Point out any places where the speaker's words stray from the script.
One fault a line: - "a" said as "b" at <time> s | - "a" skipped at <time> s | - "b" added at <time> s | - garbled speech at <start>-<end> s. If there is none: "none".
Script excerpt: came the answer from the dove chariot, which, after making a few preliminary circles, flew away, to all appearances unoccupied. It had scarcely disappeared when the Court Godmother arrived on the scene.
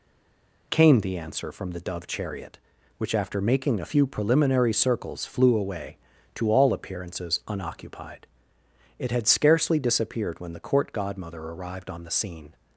none